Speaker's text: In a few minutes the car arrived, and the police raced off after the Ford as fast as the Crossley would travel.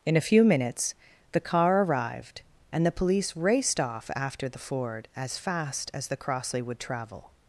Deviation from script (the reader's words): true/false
false